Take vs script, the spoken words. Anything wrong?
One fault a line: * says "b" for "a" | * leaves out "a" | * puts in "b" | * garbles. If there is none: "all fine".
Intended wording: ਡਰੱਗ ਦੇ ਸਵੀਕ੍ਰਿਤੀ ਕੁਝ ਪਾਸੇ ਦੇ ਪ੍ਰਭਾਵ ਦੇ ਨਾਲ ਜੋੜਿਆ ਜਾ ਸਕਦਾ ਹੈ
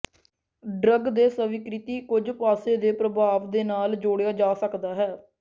all fine